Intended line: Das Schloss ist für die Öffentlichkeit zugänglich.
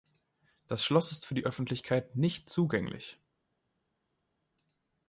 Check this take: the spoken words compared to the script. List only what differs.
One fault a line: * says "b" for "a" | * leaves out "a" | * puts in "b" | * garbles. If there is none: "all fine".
* puts in "nicht"